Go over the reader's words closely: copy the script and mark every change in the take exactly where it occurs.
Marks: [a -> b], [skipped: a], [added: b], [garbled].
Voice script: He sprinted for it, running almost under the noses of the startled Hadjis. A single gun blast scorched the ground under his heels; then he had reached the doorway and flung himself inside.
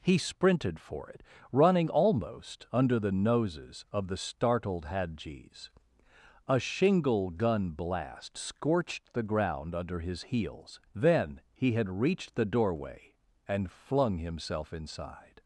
He sprinted for it, running almost under the noses of the startled Hadjis. A [single -> shingle] gun blast scorched the ground under his heels; then he had reached the doorway and flung himself inside.